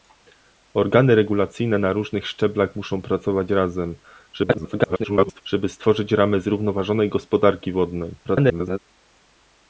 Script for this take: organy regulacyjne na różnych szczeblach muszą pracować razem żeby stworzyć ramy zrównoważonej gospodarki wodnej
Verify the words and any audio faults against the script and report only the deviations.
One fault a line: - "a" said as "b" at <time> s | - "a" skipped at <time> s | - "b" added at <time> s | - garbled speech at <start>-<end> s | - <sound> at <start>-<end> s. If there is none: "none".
- garbled speech at 4.3-5.4 s
- garbled speech at 8.2-8.8 s